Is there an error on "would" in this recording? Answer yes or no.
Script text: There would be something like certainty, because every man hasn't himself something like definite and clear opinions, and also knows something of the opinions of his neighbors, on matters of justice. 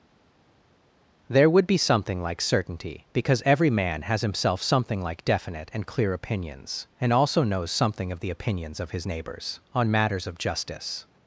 no